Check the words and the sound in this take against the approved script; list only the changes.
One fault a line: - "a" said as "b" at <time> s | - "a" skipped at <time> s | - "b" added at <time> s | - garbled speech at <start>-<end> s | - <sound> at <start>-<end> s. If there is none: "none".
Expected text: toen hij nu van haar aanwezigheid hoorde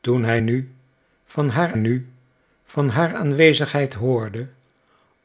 - "nu van haar" added at 1.7 s